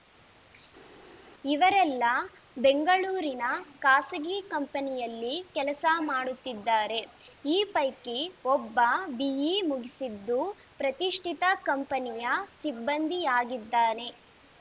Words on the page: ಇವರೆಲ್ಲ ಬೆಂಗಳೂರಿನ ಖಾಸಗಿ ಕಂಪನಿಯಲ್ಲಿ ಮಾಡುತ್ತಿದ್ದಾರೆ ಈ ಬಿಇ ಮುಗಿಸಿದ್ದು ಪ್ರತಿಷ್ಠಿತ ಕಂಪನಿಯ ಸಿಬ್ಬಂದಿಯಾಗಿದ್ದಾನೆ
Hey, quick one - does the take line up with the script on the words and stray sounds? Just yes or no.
no